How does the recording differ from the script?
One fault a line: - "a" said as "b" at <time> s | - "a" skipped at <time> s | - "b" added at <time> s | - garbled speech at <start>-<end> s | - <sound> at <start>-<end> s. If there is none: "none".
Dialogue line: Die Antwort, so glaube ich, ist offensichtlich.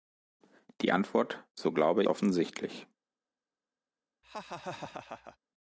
- "ich ist" skipped at 2.0 s
- laugh at 4.2-5.4 s